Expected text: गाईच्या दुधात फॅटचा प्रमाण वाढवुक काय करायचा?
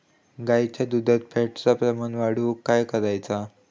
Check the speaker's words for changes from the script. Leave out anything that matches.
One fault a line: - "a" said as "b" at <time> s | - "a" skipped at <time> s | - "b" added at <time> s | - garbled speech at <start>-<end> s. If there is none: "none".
none